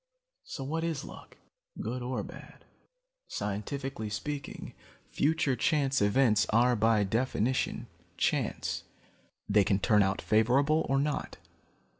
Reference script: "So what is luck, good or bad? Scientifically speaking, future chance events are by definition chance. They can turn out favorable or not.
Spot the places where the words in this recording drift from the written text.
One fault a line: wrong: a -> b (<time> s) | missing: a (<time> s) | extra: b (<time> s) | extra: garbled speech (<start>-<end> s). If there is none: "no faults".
no faults